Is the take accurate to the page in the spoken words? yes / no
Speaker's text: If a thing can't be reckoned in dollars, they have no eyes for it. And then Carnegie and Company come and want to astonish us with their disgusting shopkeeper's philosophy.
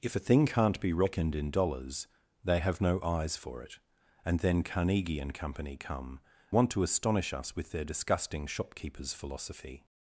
no